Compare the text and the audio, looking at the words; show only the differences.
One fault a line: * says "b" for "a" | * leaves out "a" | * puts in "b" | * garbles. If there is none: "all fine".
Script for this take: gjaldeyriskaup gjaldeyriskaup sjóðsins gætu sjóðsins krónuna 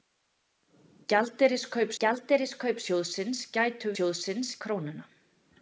all fine